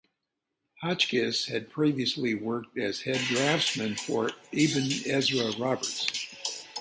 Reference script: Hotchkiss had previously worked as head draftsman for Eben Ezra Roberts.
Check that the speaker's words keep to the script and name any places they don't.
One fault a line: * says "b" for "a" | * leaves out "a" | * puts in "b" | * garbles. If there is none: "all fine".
all fine